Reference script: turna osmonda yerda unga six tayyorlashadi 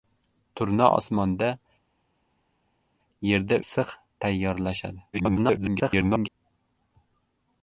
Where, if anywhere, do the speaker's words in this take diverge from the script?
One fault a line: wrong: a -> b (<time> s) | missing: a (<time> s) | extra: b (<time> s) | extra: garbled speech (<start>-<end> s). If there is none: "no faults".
missing: unga (3.6 s)
extra: garbled speech (5.1-6.3 s)